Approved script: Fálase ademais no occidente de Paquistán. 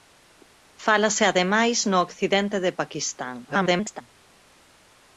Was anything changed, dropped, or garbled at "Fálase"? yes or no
no